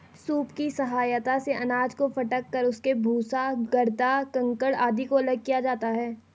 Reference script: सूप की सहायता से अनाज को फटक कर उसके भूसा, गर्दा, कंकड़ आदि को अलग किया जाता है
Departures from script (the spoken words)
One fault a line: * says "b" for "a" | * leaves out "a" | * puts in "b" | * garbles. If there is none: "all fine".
all fine